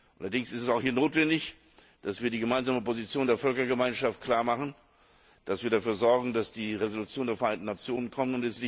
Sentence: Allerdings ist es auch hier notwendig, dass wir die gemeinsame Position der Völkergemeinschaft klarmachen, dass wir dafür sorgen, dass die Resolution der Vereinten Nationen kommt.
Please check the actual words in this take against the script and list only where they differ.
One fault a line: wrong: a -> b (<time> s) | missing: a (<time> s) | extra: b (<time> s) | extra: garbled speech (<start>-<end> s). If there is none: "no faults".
no faults